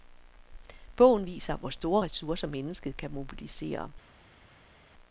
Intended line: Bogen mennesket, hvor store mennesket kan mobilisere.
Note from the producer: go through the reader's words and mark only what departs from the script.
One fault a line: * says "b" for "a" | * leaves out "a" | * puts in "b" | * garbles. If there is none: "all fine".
* says "viser" for "mennesket"
* puts in "ressourcer"